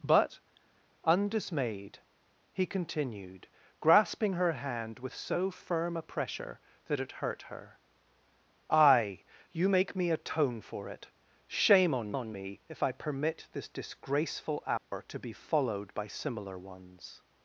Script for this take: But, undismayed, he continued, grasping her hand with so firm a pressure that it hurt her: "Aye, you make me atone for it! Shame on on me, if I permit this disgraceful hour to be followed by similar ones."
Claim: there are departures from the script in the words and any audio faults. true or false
true